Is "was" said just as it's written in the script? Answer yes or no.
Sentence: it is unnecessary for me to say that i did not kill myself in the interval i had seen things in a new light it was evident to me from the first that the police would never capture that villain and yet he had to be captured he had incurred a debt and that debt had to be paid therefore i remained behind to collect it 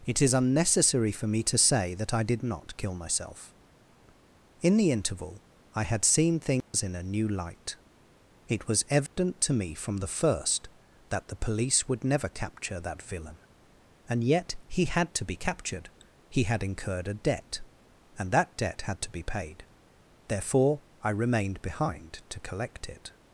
yes